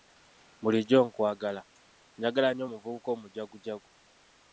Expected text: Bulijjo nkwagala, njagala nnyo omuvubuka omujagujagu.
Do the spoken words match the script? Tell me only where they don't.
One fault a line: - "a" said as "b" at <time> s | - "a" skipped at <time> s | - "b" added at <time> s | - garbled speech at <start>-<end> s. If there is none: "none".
none